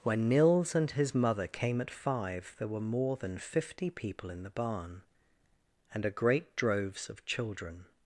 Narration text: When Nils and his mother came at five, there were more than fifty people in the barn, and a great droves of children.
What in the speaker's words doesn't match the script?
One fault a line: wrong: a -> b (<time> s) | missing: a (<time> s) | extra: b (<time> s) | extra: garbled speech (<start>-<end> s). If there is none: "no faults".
no faults